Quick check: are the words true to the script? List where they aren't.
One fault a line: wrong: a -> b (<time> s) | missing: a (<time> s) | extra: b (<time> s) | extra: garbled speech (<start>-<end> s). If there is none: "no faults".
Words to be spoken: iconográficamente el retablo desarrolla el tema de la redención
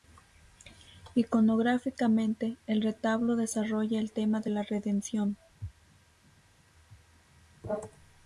no faults